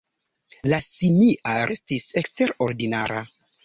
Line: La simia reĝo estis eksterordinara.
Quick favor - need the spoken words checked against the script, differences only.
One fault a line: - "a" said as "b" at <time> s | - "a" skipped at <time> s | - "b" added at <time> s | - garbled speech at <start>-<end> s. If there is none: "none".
- "reĝo" skipped at 1.5 s